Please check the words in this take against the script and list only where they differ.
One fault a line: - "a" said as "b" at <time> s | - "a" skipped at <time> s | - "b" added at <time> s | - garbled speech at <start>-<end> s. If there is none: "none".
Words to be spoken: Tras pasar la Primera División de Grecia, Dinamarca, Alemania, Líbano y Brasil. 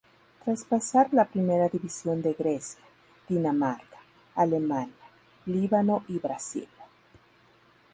none